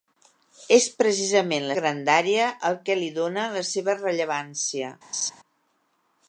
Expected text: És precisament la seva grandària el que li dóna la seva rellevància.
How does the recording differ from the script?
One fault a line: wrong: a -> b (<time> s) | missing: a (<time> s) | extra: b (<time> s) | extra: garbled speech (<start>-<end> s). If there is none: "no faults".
missing: seva (1.8 s)